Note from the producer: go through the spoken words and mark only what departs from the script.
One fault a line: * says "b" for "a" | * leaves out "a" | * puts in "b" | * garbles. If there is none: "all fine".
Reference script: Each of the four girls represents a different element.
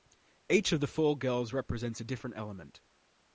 all fine